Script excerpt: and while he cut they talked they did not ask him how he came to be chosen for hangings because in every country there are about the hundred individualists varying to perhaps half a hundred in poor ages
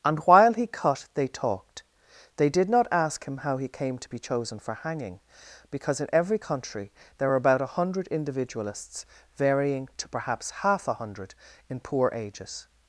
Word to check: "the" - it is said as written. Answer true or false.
false